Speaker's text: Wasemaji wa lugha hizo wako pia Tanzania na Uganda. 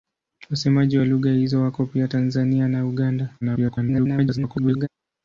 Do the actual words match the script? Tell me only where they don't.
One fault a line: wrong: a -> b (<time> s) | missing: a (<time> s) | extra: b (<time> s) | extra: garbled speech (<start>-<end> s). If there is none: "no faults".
extra: garbled speech (3.4-4.9 s)